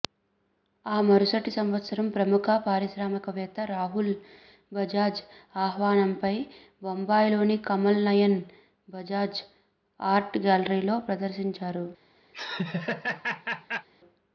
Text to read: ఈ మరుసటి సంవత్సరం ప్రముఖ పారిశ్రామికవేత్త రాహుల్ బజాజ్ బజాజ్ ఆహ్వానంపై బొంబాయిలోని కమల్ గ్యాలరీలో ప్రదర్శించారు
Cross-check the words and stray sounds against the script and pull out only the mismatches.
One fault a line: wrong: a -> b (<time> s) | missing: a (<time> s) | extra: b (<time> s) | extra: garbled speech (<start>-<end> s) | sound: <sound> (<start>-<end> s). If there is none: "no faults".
wrong: ఈ -> ఆ (0.8 s)
missing: బజాజ్ (5.2 s)
extra: నయన్ బజాజ్ ఆర్ట్ (8.1 s)
sound: laugh (12.3-13.9 s)